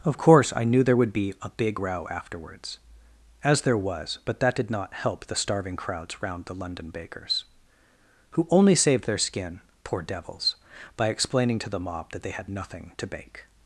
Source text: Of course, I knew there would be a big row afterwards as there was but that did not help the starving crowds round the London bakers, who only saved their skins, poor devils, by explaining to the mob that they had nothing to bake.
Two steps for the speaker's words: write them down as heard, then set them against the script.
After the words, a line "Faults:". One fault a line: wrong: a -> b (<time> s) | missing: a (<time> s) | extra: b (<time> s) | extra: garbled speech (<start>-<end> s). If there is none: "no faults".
Of course, I knew there would be a big row afterwards as there was but that did not help the starving crowds round the London bakers, who only saved their skin, poor devils, by explaining to the mob that they had nothing to bake.
Faults:
wrong: skins -> skin (9.2 s)